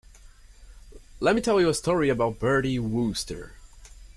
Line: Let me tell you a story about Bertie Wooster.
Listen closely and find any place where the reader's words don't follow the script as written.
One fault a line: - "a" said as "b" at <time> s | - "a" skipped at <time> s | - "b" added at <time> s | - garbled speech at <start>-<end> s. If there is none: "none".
none